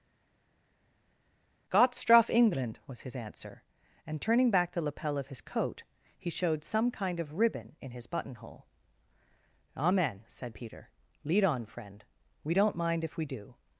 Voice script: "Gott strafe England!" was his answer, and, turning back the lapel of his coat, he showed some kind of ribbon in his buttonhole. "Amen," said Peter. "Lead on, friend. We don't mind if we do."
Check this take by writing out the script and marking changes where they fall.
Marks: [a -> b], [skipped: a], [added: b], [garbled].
"Gott strafe England!" was his answer, and, turning back the lapel of his coat, he showed some kind of ribbon in his buttonhole. "Amen," said Peter. "Lead on, friend. We don't mind if we do."